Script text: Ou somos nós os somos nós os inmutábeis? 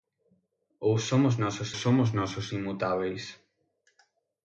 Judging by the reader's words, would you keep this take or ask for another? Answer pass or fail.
pass